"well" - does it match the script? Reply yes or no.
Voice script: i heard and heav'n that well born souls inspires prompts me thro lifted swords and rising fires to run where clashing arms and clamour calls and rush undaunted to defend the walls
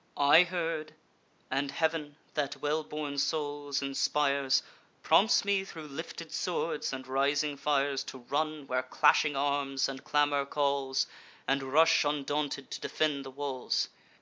yes